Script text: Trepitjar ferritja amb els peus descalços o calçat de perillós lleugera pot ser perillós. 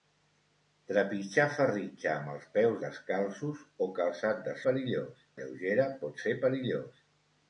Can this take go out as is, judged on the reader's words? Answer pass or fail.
pass